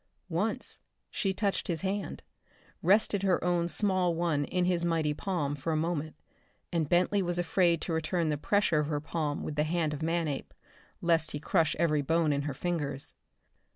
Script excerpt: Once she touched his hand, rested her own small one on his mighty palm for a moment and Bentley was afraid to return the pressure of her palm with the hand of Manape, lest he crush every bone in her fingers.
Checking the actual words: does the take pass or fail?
fail